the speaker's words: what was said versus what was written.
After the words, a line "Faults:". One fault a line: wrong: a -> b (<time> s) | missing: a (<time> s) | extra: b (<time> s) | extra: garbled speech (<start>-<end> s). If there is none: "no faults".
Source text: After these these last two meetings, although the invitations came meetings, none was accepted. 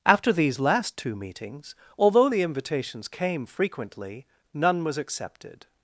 After these last two meetings, although the invitations came frequently, none was accepted.
Faults:
missing: these (0.6 s)
wrong: meetings -> frequently (3.4 s)